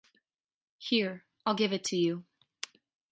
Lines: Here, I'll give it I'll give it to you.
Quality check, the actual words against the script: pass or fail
fail